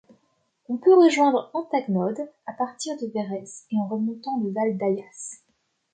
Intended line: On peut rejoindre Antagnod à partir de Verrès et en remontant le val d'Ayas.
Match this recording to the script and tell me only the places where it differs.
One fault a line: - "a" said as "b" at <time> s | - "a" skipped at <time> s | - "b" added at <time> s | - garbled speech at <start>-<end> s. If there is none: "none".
none